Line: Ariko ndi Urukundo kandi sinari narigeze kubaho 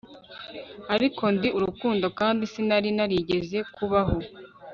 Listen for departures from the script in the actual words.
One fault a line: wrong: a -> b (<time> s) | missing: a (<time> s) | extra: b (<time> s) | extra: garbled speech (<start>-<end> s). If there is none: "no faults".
no faults